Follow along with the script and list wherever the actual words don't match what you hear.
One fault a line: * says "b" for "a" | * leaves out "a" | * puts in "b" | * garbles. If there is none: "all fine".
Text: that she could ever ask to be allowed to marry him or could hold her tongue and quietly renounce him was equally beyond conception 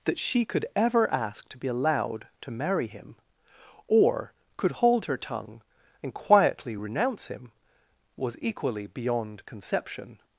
all fine